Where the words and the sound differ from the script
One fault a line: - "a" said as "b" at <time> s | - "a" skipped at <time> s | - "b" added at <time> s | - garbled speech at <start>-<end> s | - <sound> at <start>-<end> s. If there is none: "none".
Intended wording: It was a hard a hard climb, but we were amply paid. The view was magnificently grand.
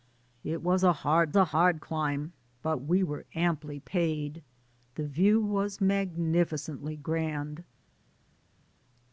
none